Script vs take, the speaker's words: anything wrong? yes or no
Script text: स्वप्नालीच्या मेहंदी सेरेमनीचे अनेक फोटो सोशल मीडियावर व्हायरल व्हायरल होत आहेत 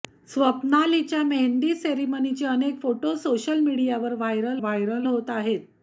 no